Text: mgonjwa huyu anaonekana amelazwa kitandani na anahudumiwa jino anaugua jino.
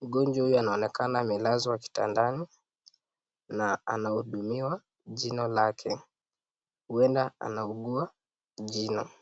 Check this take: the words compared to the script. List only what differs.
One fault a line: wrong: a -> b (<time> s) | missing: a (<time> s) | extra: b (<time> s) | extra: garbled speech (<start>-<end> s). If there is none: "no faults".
extra: lake huenda (5.5 s)